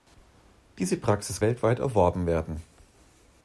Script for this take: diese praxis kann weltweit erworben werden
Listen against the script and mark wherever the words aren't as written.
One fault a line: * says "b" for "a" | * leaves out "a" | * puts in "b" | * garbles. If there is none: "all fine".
* leaves out "kann"